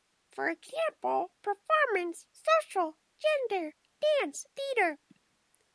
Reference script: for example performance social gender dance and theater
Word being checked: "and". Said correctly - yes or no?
no